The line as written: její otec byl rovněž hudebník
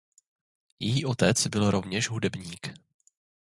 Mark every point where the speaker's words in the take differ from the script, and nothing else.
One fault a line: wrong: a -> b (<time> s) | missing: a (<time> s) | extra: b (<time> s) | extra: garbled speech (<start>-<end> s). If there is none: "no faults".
no faults